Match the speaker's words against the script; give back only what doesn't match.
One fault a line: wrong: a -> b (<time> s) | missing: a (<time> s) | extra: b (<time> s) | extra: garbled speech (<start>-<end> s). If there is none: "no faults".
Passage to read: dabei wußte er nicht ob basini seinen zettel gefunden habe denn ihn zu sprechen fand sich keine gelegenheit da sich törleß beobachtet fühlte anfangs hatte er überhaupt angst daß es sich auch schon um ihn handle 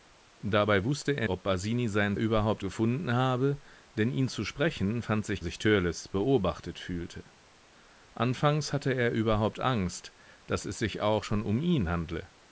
missing: nicht (1.3 s)
wrong: zettel -> überhaupt (2.2 s)
missing: keine gelegenheit da (5.4 s)